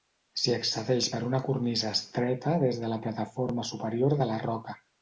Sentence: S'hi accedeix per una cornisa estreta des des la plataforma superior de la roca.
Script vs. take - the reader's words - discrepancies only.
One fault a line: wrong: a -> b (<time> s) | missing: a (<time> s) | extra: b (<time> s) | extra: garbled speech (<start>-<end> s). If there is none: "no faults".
wrong: des -> de (2.9 s)